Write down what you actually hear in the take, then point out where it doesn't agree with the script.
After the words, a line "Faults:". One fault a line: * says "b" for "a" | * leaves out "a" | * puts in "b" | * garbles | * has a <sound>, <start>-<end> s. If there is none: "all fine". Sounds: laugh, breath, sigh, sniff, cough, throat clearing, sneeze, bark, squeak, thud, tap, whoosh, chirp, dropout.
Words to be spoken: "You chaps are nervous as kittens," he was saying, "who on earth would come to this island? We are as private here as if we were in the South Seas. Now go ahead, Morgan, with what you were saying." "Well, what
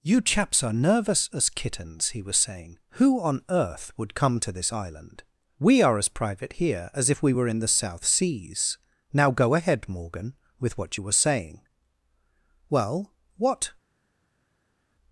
"You chaps are nervous as kittens," he was saying, "who on earth would come to this island? We are as private here as if we were in the South Seas. Now go ahead, Morgan, with what you were saying." "Well, what
Faults:
all fine